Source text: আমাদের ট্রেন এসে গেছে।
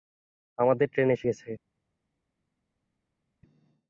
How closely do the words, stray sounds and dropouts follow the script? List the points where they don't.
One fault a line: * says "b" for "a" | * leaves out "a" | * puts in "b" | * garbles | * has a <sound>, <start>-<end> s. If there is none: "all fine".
all fine